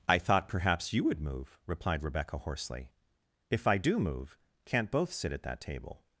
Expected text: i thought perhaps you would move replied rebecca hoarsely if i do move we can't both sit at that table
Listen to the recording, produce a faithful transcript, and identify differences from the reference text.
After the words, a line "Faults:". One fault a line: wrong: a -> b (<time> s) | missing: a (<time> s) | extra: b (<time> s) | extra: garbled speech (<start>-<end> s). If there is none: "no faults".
i thought perhaps you would move replied rebecca hoarsely if i do move can't both sit at that table
Faults:
missing: we (4.4 s)